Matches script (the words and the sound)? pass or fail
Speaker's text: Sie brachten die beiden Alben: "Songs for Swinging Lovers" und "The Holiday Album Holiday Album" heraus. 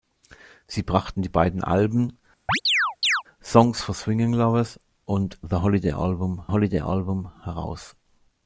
fail